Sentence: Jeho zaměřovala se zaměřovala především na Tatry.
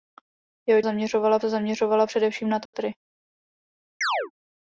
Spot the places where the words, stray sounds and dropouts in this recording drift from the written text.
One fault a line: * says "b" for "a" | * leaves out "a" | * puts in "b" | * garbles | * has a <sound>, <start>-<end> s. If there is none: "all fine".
* has a dropout, 2.7-2.7 s
* has a chirp, 4.0-4.3 s